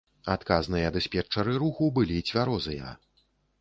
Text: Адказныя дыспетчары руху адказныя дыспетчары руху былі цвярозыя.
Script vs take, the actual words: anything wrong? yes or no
yes